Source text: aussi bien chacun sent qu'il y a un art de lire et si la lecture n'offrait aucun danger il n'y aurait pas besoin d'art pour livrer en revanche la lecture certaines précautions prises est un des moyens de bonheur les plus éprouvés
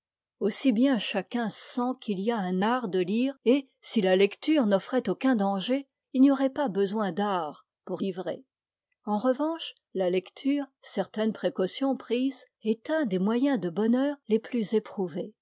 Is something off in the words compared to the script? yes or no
no